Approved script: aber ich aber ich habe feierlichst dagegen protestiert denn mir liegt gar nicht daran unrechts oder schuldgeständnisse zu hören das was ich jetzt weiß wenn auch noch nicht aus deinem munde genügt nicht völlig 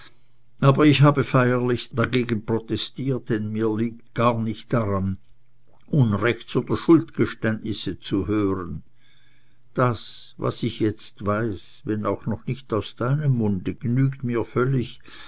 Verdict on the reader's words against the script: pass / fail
fail